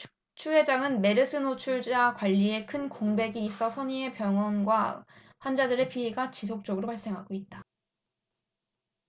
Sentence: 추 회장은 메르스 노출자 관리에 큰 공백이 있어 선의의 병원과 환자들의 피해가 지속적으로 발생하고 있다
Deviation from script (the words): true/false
false